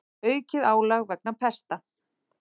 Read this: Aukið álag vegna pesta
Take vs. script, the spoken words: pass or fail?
pass